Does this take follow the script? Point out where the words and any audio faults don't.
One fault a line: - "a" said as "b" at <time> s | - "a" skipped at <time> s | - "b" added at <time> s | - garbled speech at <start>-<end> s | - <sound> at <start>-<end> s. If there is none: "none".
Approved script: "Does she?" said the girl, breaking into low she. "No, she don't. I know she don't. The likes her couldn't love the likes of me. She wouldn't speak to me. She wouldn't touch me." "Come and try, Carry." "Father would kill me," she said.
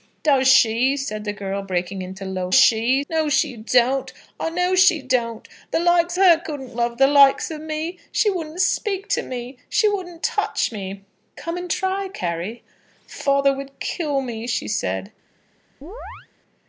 - chirp at 15.8-16.3 s